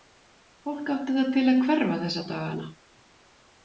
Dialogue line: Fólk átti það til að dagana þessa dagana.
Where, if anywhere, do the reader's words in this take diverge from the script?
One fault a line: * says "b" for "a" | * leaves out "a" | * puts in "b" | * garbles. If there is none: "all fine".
* says "hverfa" for "dagana"